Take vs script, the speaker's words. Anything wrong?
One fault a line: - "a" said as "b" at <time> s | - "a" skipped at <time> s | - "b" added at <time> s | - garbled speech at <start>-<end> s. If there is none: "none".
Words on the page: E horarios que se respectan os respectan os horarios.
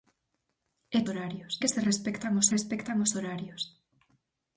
none